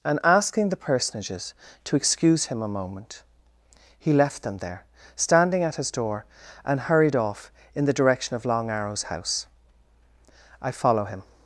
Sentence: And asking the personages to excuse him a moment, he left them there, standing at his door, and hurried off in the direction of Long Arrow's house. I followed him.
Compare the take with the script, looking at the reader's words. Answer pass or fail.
fail